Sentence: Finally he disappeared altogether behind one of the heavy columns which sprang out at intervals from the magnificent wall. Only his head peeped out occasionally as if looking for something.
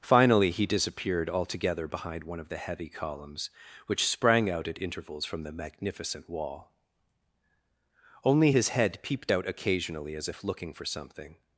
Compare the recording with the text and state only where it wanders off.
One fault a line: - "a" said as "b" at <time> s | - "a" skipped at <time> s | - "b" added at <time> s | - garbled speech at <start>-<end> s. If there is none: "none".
none